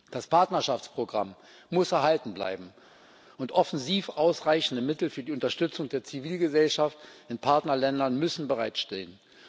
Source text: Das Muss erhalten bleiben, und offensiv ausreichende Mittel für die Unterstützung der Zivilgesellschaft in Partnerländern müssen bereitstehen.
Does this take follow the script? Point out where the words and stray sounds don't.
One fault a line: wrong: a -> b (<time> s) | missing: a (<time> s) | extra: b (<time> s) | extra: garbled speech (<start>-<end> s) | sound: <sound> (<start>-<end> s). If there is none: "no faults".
extra: Partnerschaftsprogramm (0.2 s)